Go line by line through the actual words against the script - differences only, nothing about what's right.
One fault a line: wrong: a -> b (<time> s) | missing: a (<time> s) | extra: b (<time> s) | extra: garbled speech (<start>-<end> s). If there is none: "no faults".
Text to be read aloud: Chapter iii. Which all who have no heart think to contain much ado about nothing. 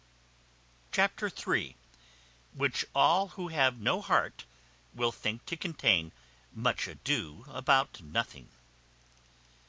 extra: will (4.9 s)